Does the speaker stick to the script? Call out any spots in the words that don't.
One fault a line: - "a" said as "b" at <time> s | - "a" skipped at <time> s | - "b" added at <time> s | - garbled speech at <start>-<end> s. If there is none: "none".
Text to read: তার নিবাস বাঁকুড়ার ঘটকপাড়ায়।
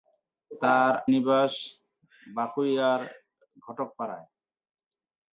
none